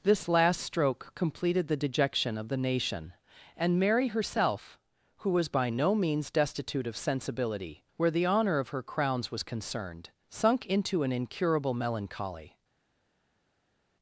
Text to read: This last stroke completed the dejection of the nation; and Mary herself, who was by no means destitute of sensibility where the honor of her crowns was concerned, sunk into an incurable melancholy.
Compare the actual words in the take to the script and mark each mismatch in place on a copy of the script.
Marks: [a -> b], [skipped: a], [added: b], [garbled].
This last stroke completed the dejection of the nation; and Mary herself, who was by no means destitute of sensibility where the honor of her crowns was concerned, sunk into an incurable melancholy.